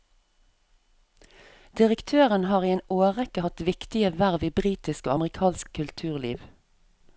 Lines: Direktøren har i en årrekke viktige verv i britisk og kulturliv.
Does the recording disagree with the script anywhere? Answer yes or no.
yes